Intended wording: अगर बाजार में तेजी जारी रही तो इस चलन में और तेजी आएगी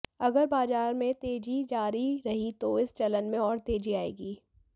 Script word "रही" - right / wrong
right